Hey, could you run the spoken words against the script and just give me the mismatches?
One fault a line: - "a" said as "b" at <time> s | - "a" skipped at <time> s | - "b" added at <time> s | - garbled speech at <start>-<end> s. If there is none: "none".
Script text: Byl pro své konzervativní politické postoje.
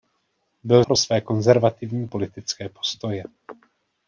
none